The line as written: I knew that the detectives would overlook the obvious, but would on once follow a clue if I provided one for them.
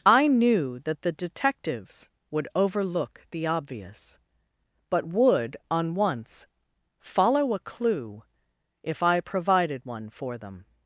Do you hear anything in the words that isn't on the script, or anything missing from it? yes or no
no